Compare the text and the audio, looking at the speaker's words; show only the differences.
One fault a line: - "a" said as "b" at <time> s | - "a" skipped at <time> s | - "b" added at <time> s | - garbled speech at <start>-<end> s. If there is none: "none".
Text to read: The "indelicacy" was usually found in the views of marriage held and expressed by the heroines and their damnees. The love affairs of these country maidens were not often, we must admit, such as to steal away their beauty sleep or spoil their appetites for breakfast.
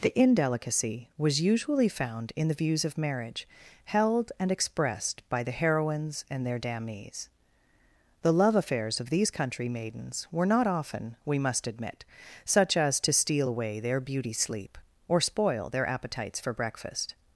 none